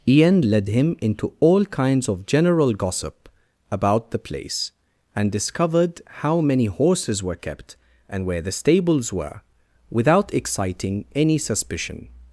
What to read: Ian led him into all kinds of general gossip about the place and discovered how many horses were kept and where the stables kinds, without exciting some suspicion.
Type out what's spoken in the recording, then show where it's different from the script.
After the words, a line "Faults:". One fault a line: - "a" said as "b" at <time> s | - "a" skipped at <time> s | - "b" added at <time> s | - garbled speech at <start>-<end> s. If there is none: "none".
Ian led him into all kinds of general gossip about the place and discovered how many horses were kept and where the stables were, without exciting any suspicion.
Faults:
- "kinds" said as "were" at 9.1 s
- "some" said as "any" at 11.1 s